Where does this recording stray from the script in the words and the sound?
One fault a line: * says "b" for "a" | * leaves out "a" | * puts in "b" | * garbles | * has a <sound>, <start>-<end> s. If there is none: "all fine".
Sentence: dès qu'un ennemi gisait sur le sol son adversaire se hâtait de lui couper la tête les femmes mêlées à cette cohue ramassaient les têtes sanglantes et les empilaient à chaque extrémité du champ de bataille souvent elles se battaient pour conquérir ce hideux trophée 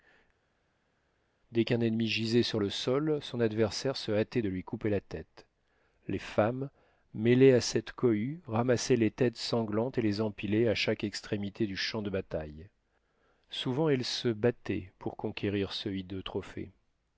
all fine